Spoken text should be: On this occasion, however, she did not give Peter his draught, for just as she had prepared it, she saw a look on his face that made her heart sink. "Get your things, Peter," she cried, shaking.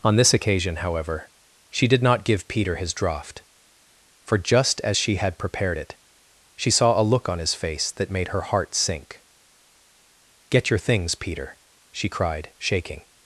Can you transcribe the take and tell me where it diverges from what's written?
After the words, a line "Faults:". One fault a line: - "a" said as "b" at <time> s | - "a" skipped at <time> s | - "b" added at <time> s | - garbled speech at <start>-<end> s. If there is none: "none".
On this occasion, however, she did not give Peter his draught, for just as she had prepared it, she saw a look on his face that made her heart sink. "Get your things, Peter," she cried, shaking.
Faults:
none